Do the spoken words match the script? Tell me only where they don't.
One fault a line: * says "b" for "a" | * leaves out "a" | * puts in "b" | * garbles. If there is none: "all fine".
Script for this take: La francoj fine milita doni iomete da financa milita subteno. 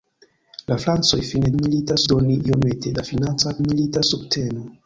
all fine